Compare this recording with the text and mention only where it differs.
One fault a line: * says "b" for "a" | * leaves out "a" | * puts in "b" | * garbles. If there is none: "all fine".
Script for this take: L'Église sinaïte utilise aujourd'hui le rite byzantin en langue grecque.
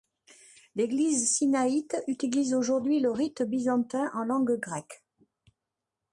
all fine